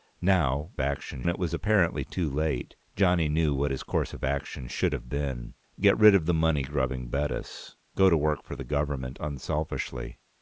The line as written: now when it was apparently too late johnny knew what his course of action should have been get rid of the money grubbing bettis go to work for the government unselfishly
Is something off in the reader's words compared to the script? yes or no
yes